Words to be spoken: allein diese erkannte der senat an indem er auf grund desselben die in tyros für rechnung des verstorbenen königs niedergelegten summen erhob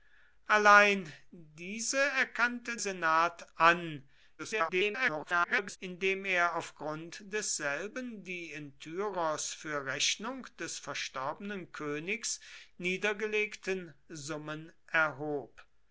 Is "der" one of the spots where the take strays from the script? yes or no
yes